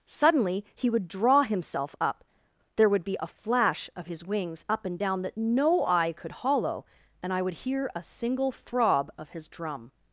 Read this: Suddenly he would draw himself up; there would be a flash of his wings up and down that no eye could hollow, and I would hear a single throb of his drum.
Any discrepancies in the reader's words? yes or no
no